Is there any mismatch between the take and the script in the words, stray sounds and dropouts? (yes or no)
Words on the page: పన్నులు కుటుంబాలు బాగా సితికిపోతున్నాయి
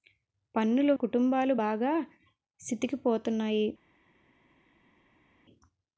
no